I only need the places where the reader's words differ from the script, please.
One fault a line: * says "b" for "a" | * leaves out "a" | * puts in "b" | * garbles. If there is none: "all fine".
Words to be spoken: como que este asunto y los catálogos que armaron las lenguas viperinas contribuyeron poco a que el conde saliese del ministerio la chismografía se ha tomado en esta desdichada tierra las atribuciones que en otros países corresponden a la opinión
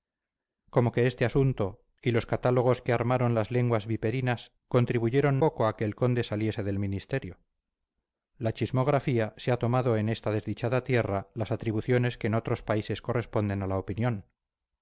all fine